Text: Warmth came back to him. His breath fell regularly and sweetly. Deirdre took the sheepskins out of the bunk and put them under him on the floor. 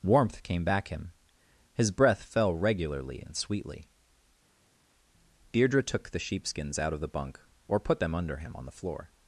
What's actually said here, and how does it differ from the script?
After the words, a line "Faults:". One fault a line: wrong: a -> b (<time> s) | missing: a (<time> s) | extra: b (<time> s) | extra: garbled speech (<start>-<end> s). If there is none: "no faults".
Warmth came back him. His breath fell regularly and sweetly. Deirdre took the sheepskins out of the bunk or put them under him on the floor.
Faults:
missing: to (0.9 s)
wrong: and -> or (7.7 s)